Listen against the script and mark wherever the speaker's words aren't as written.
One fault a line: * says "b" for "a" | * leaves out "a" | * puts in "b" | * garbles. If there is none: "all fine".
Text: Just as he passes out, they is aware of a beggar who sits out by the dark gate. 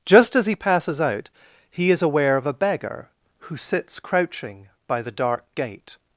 * says "he" for "they"
* says "crouching" for "out"